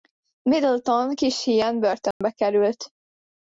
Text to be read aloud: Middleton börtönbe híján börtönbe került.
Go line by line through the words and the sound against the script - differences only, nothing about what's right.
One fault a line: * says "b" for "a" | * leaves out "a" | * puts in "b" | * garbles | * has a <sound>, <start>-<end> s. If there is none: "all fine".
* says "kis" for "börtönbe"
* has a dropout, 2.1-2.2 s